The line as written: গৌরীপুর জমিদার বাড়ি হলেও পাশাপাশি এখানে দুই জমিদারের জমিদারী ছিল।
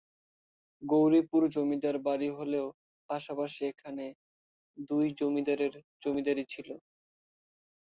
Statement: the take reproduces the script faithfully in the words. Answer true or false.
true